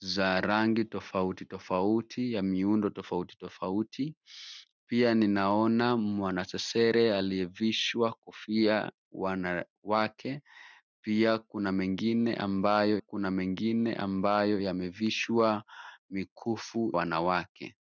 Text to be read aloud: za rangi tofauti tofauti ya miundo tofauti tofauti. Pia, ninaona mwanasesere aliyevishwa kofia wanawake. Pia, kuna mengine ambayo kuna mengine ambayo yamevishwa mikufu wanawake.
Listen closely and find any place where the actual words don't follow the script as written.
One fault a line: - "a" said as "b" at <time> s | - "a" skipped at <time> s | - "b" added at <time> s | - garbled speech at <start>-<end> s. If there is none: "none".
none